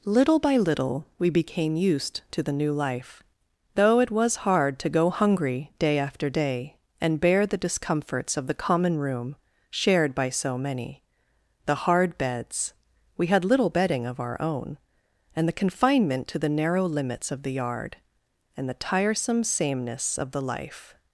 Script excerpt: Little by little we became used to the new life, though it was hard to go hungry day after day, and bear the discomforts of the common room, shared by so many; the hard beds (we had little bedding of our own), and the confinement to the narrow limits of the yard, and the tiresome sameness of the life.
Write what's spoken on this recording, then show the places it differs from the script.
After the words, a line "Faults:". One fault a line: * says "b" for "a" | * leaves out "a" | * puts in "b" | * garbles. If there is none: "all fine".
Little by little we became used to the new life, though it was hard to go hungry day after day, and bear the discomforts of the common room, shared by so many; the hard beds (we had little bedding of our own), and the confinement to the narrow limits of the yard, and the tiresome sameness of the life.
Faults:
all fine